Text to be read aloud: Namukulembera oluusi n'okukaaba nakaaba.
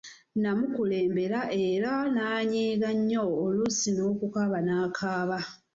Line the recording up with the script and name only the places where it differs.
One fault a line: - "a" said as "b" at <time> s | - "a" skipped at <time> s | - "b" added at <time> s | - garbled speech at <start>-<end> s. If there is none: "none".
- "era n'anyiiga nnyo" added at 1.7 s